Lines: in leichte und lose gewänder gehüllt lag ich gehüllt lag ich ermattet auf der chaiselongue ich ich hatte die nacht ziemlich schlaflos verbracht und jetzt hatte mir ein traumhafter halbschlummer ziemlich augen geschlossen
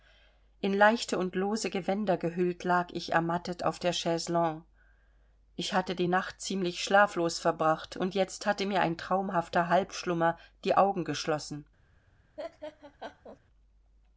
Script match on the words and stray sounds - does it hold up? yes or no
no